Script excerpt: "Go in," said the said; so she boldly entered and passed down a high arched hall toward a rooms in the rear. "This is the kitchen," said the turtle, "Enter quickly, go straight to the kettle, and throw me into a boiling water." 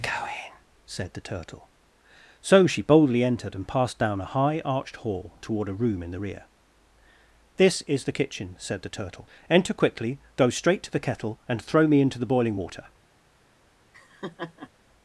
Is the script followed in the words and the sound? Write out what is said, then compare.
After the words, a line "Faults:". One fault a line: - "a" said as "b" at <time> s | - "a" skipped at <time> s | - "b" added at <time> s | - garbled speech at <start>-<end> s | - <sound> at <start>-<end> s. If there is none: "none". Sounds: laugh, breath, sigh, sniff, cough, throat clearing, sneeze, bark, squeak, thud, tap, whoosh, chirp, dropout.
"Go in," said the turtle; so she boldly entered and passed down a high arched hall toward a room in the rear. "This is the kitchen," said the turtle, "Enter quickly, go straight to the kettle, and throw me into the boiling water."
Faults:
- "said" said as "turtle" at 1.2 s
- "rooms" said as "room" at 5.8 s
- "a" said as "the" at 12.2 s
- laugh at 13.9-14.7 s